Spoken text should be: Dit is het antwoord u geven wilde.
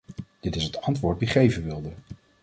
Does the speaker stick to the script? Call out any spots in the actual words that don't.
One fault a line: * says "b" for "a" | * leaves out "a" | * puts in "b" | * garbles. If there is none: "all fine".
all fine